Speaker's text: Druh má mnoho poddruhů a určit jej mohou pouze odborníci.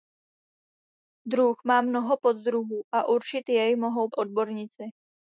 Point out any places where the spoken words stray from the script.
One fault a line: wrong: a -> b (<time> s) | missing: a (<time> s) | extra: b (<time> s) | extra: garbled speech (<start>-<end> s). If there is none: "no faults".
missing: pouze (4.1 s)